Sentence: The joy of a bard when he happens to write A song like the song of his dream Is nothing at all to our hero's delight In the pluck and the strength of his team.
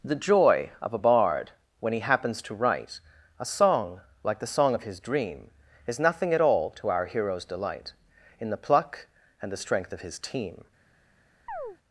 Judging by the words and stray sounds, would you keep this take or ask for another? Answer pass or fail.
fail